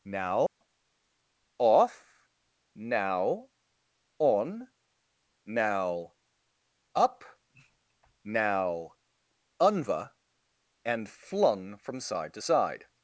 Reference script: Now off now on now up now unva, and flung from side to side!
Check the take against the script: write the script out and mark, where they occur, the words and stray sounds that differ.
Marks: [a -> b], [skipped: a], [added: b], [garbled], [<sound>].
Now [dropout] off now on now up now unva, and flung from side to side!